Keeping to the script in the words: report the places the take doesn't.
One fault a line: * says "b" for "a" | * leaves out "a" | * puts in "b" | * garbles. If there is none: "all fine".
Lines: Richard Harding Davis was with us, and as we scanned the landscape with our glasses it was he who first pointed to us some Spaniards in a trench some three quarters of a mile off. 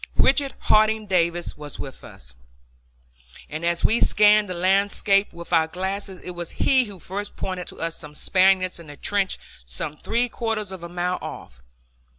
all fine